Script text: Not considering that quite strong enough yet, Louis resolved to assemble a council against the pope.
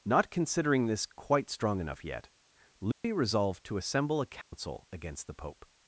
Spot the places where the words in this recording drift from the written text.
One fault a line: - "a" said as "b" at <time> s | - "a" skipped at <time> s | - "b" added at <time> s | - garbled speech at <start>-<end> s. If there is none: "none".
- "that" said as "this" at 0.9 s